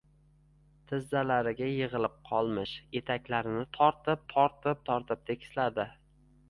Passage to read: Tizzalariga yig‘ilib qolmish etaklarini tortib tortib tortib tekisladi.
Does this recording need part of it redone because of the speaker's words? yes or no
no